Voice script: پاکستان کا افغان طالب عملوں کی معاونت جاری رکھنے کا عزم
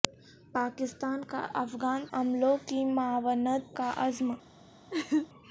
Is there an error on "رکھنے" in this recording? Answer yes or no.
yes